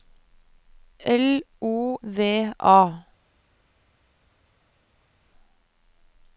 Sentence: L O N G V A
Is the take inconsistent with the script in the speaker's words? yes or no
yes